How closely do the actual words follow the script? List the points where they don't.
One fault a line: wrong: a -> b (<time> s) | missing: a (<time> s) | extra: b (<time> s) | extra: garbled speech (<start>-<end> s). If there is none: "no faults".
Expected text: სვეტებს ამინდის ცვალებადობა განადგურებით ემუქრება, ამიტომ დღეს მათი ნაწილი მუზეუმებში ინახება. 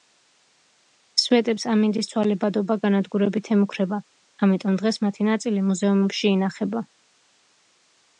no faults